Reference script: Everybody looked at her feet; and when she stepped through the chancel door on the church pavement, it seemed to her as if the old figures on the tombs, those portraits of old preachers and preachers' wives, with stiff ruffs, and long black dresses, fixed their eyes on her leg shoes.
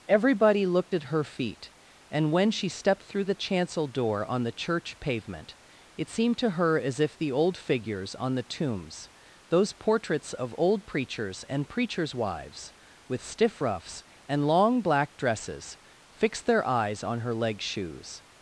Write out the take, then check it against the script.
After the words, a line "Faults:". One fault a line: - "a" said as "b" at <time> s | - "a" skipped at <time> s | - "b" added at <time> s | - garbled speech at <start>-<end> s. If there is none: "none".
Everybody looked at her feet; and when she stepped through the chancel door on the church pavement, it seemed to her as if the old figures on the tombs, those portraits of old preachers and preachers' wives, with stiff ruffs, and long black dresses, fixed their eyes on her leg shoes.
Faults:
none